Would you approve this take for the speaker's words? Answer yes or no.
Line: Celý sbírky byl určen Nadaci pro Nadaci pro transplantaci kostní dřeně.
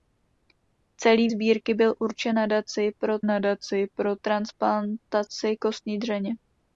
yes